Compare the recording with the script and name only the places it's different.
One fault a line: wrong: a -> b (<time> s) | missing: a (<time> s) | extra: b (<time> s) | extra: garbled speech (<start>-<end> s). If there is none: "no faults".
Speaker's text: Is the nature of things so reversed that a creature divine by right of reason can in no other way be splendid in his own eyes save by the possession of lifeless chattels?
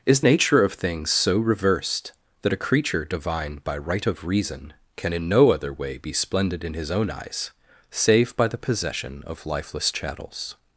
missing: the (0.2 s)